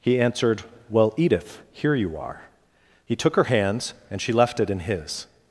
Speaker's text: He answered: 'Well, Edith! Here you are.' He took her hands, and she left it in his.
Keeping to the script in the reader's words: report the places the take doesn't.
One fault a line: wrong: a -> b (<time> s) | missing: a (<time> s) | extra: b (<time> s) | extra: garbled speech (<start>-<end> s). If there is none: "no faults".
no faults